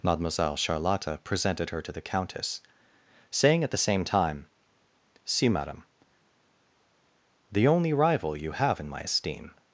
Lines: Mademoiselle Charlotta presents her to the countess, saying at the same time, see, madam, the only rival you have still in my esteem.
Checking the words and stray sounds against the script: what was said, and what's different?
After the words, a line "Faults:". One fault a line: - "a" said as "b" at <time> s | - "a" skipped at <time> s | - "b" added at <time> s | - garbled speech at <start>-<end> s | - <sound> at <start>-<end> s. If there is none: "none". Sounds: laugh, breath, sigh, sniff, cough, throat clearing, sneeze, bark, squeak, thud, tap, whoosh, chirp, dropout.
Mademoiselle Charlotta presented her to the countess, saying at the same time, see, madam, the only rival you have in my esteem.
Faults:
- "presents" said as "presented" at 1.2 s
- "still" skipped at 8.8 s